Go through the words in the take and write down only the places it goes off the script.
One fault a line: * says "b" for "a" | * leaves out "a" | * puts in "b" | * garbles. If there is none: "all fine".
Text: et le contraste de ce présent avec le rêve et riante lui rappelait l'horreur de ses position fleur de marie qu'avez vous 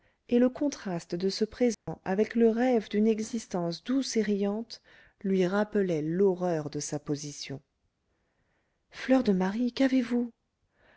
* puts in "d'une existence douce"
* says "sa" for "ses"